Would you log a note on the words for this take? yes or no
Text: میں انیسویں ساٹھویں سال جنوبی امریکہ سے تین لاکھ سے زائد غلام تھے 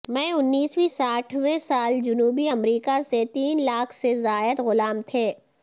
no